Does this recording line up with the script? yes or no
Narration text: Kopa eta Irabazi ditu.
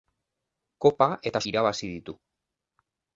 yes